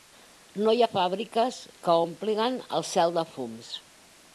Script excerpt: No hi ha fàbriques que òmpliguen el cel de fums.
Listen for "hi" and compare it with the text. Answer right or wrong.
right